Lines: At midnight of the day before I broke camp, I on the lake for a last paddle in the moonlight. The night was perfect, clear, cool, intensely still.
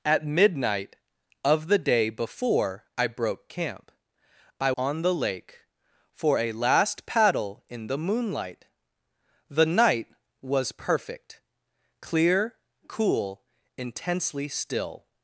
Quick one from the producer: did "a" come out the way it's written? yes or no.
yes